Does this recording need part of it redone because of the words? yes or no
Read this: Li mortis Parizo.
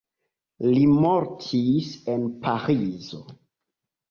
yes